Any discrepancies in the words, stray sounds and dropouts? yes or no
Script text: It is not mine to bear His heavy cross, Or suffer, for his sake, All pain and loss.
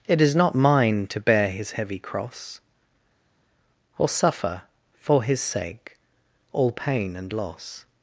no